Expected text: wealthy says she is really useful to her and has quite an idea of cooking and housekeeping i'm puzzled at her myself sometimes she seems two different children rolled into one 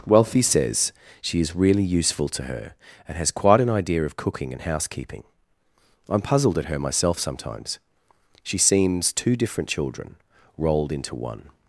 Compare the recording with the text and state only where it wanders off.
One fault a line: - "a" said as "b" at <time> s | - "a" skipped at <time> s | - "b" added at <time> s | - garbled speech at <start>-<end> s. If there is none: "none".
none